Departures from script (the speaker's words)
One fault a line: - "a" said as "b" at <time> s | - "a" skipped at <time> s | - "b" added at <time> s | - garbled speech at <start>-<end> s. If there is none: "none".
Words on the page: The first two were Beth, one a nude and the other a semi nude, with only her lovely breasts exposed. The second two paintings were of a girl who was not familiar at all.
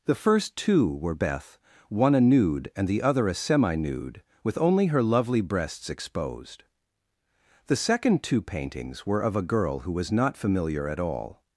none